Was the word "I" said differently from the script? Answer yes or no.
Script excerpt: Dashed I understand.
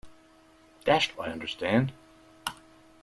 no